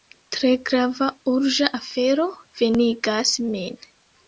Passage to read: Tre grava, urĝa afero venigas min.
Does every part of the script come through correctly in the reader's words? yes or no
yes